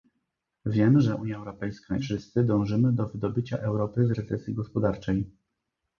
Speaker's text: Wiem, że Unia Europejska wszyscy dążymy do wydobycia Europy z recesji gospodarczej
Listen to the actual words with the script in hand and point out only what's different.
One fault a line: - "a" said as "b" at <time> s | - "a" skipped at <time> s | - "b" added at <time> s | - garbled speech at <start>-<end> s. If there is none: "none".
none